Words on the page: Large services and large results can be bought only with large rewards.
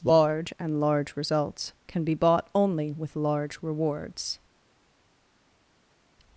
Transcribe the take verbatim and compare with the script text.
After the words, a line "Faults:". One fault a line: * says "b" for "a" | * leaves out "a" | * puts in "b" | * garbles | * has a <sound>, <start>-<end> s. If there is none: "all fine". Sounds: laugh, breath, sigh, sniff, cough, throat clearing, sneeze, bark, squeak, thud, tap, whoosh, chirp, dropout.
Large and large results can be bought only with large rewards.
Faults:
* leaves out "services"